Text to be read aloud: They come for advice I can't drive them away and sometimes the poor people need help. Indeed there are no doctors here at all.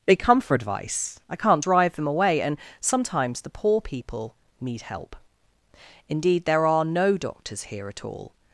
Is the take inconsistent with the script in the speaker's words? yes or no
no